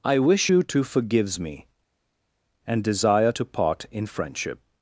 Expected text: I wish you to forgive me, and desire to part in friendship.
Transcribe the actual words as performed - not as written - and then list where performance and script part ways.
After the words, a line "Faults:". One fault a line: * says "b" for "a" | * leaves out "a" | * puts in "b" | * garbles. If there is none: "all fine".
I wish you to forgives me, and desire to part in friendship.
Faults:
* says "forgives" for "forgive"